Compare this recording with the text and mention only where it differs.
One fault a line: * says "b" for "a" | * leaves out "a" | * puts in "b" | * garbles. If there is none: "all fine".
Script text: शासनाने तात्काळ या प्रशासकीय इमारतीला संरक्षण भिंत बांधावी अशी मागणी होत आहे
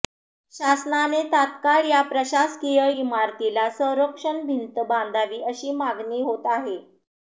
all fine